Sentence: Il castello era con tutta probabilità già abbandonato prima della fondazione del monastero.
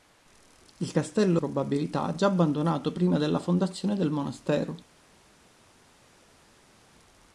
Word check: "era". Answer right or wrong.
wrong